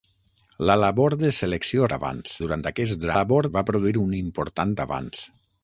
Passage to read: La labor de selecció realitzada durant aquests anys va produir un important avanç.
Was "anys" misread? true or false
true